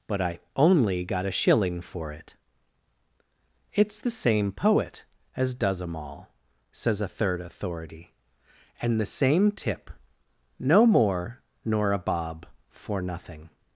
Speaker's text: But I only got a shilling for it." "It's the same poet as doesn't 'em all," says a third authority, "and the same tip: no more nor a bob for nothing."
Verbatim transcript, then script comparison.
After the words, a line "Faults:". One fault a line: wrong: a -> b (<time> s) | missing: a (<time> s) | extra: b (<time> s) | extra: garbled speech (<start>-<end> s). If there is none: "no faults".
But I only got a shilling for it." "It's the same poet as does 'em all," says a third authority, "and the same tip: no more nor a bob for nothing."
Faults:
wrong: doesn't -> does (5.5 s)